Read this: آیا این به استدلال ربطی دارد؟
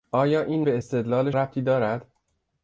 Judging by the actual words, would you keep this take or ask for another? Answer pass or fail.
pass